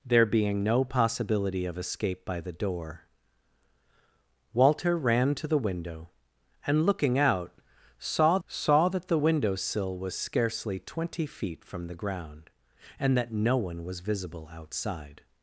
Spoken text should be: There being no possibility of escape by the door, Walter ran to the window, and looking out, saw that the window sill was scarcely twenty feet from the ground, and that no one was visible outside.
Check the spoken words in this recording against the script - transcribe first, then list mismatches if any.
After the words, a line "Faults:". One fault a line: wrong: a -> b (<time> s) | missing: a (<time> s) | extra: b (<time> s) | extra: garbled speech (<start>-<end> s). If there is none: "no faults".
There being no possibility of escape by the door, Walter ran to the window, and looking out, saw saw that the window sill was scarcely twenty feet from the ground, and that no one was visible outside.
Faults:
extra: saw (8.5 s)